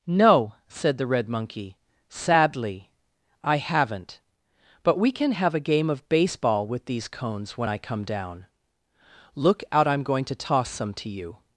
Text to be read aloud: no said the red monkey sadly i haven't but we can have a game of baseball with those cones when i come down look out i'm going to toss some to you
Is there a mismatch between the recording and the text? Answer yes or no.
yes